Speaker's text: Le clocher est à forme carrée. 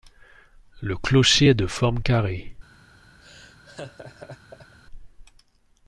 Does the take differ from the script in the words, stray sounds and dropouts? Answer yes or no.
yes